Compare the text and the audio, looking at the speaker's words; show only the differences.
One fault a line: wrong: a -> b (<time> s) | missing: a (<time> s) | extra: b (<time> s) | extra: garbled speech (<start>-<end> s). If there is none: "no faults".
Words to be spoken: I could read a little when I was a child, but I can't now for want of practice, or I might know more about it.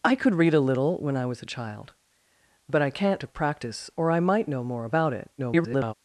missing: now for want (3.2 s)
extra: garbled speech (5.4-5.9 s)